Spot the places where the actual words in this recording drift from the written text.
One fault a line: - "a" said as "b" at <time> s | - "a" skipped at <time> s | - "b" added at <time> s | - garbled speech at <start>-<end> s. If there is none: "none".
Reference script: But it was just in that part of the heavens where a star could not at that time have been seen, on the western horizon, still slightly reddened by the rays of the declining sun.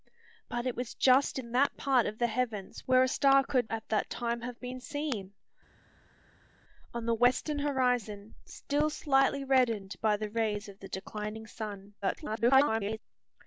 - "not" skipped at 3.7 s
- garbled speech at 12.0-13.0 s